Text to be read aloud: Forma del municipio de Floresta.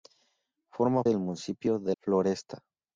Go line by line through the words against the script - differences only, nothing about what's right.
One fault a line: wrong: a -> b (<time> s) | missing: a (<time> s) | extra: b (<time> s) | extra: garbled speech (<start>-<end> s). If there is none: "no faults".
no faults